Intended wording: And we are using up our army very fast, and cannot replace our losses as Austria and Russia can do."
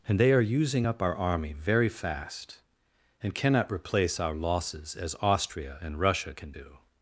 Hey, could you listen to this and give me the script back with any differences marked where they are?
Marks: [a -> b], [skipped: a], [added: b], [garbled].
And [we -> they] are using up our army very fast, and cannot replace our losses as Austria and Russia can do."